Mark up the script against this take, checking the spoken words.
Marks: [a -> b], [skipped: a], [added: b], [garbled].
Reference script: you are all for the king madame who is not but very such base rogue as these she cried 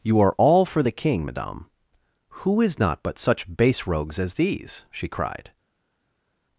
you are all for the king madame who is not but [skipped: very] such base [rogue -> rogues] as these she cried